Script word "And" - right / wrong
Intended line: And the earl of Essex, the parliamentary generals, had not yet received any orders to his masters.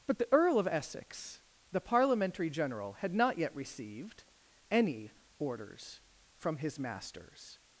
wrong